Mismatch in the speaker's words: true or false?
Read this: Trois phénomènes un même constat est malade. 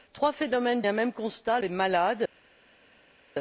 false